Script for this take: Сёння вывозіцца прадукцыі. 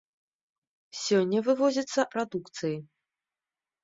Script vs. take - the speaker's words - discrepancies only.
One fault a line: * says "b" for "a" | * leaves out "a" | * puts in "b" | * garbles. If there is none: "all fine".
all fine